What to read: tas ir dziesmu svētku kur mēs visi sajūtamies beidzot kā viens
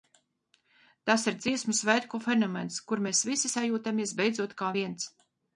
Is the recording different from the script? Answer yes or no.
yes